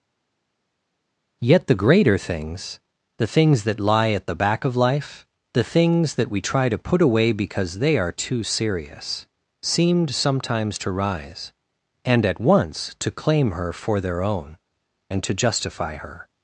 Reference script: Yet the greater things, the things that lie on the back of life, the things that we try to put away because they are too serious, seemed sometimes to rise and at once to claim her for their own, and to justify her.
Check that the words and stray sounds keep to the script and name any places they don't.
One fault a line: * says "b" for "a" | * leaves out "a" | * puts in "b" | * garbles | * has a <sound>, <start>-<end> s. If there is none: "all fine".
* says "at" for "on"